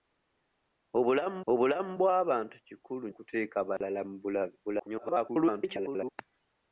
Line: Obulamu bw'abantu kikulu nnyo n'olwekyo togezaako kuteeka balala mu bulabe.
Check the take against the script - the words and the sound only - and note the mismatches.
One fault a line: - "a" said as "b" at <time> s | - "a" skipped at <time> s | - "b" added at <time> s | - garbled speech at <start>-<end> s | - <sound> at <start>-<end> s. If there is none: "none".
- "obulamu" added at 1.5 s
- "nnyo n'olwekyo togezaako" skipped at 3.1 s
- dropout at 3.8-3.8 s
- garbled speech at 4.6-6.1 s